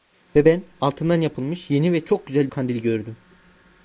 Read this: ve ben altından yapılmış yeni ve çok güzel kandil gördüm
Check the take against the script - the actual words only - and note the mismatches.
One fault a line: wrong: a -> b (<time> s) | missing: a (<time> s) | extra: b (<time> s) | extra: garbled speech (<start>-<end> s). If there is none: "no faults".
no faults